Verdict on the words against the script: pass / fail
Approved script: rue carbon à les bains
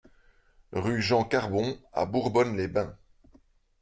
fail